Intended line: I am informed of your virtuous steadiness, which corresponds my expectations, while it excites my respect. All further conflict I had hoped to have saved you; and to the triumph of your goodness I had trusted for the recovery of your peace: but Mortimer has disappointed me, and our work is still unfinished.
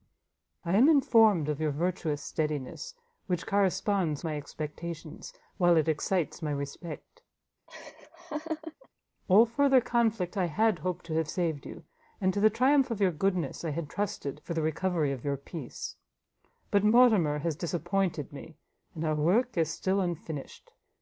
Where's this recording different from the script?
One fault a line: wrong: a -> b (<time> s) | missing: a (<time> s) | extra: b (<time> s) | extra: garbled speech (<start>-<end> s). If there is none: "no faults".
no faults